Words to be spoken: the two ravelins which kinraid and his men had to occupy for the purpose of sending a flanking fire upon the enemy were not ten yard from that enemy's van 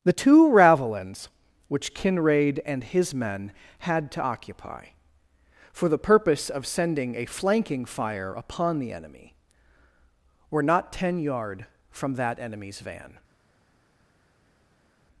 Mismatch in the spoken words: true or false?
false